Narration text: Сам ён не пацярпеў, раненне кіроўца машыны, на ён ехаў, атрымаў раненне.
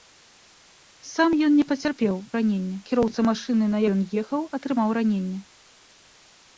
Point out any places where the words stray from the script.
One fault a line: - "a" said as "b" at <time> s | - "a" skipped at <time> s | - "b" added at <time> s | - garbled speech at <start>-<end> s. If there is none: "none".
none